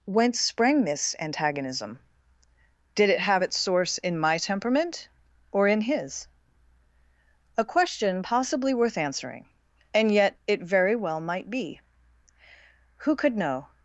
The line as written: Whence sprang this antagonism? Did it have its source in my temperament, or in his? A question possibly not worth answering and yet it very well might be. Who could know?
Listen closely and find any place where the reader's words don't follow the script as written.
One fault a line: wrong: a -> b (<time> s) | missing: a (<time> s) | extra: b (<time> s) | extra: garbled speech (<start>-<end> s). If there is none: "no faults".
missing: not (8.7 s)